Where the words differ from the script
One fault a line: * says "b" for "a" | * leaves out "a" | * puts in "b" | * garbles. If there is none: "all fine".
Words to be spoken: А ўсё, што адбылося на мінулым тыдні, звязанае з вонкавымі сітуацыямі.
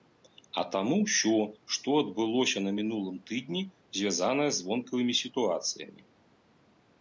* puts in "таму"